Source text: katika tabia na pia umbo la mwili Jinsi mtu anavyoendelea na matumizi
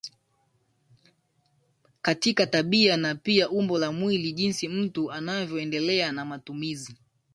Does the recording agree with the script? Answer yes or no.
yes